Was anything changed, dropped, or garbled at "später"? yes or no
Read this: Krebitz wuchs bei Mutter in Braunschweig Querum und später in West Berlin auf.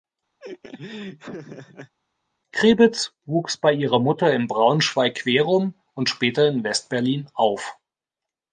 no